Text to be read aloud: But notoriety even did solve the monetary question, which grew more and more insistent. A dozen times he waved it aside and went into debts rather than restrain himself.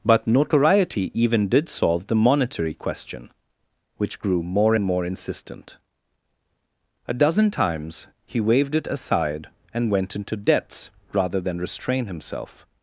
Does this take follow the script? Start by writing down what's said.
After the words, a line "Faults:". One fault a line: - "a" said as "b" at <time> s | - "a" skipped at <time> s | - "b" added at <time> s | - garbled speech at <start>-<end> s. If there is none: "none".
But notoriety even did solve the monetary question, which grew more and more insistent. A dozen times he waved it aside and went into debts rather than restrain himself.
Faults:
none